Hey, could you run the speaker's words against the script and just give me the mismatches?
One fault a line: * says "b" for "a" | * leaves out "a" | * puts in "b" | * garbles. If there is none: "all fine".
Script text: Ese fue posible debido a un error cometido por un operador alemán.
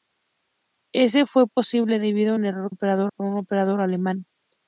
* says "operador" for "cometido"